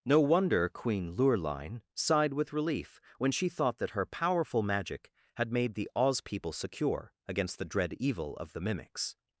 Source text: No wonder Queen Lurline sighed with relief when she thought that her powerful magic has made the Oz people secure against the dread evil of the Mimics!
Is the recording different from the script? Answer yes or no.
yes